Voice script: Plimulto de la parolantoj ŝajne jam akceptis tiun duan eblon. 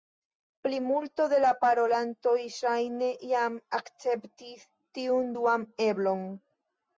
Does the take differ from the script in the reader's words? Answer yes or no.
no